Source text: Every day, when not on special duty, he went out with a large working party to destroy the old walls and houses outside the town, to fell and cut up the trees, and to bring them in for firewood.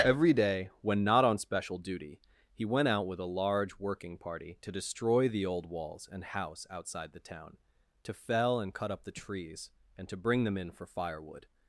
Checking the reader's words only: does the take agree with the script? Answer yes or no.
no